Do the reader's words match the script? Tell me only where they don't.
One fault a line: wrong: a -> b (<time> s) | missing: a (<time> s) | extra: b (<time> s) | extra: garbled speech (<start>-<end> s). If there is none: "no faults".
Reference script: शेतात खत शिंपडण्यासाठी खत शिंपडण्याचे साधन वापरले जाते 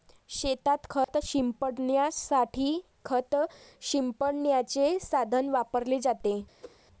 no faults